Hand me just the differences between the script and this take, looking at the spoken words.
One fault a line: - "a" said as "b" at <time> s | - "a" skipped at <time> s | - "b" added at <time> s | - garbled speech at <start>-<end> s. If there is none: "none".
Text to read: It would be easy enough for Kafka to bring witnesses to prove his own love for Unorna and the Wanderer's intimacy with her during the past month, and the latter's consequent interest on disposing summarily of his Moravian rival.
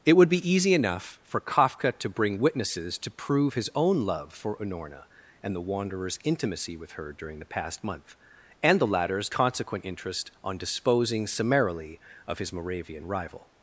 none